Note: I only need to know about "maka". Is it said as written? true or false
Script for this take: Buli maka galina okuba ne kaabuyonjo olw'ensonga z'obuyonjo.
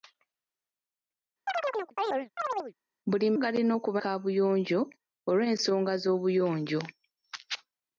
false